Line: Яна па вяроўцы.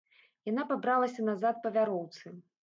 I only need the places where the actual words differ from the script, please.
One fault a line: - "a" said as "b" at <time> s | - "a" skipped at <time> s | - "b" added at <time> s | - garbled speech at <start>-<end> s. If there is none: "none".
- "пабралася назад" added at 0.7 s